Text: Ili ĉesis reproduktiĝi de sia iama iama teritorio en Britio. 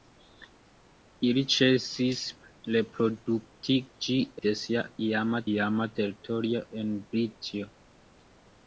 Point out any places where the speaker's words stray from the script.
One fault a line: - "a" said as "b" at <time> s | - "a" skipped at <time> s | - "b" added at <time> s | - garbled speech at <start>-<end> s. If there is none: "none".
none